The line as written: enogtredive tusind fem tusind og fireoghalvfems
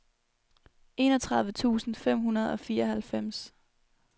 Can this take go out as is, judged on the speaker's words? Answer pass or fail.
fail